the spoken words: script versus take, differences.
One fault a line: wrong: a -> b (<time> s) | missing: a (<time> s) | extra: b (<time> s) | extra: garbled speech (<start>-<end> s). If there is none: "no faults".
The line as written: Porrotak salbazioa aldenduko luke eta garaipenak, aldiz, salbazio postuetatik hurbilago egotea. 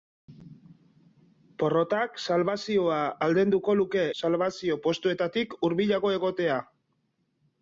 missing: eta garaipenak aldiz (4.1 s)